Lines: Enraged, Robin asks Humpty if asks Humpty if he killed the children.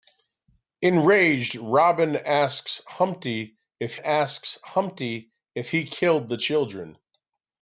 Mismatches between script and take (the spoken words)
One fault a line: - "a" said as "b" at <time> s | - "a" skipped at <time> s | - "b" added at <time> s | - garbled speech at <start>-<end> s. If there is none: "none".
none